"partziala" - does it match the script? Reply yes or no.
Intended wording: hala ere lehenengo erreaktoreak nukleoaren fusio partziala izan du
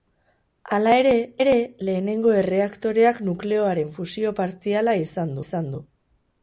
yes